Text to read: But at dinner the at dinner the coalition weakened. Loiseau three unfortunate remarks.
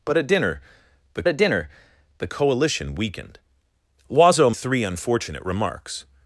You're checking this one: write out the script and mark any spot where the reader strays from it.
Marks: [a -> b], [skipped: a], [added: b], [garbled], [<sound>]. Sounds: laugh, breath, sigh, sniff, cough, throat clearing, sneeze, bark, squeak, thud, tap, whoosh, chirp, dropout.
But at dinner the at dinner the coalition weakened. Loiseau three unfortunate remarks.